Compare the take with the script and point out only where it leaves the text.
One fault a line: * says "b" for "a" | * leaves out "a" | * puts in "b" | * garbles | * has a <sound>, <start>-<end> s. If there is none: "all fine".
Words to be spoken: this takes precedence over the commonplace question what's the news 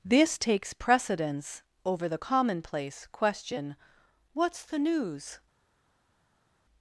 all fine